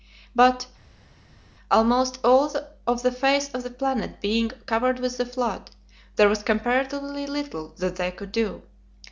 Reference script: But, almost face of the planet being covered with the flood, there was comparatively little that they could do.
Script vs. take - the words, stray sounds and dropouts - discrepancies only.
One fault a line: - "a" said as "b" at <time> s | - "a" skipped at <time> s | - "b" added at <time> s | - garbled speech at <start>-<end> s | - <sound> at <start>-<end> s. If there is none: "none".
- "all of the" added at 2.2 s